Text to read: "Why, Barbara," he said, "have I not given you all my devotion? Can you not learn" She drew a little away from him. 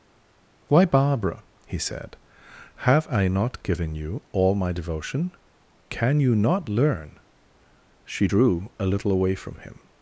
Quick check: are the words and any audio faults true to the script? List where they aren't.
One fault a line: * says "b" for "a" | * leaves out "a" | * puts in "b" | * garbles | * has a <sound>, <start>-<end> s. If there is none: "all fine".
all fine